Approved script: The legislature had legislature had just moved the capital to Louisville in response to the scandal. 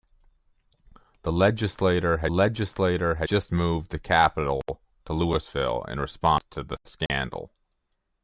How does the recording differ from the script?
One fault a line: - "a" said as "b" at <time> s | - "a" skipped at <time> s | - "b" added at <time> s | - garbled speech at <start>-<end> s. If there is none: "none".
none